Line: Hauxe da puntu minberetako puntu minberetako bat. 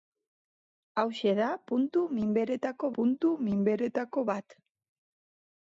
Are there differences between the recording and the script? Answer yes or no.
no